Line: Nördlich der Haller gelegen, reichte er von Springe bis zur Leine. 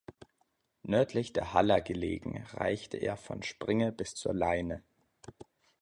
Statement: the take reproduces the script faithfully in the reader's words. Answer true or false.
true